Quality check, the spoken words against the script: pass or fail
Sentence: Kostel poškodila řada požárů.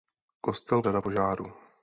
fail